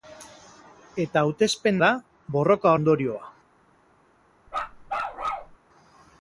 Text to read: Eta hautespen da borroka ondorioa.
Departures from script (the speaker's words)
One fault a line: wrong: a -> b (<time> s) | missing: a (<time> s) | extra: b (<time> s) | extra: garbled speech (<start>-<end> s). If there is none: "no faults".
no faults